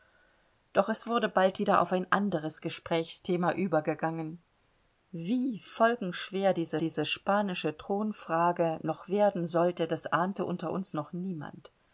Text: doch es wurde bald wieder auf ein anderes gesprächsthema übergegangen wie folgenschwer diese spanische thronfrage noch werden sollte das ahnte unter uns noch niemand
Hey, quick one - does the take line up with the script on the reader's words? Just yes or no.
no